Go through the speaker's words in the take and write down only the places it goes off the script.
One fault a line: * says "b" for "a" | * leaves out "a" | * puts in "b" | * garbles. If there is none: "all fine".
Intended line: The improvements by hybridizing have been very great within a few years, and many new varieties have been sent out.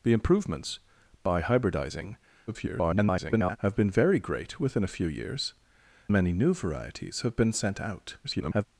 * garbles
* leaves out "and"
* garbles